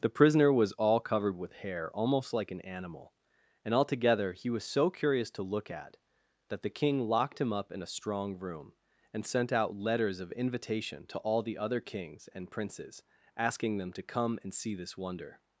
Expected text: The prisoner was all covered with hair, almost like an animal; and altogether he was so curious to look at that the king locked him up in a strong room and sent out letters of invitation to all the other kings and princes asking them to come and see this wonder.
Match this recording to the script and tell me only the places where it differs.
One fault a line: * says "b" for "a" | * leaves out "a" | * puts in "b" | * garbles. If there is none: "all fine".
all fine